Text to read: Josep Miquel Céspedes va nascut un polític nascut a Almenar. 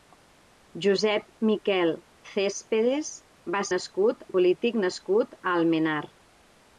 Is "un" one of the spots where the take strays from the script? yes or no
no